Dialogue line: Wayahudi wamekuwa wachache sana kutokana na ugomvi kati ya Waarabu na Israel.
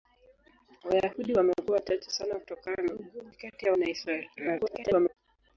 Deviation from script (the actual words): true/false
true